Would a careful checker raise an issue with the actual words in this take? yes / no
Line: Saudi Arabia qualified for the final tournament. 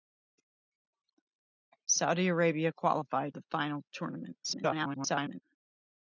yes